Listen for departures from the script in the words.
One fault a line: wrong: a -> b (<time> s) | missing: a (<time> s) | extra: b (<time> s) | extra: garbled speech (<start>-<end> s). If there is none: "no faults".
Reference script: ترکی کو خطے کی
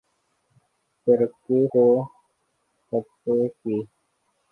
no faults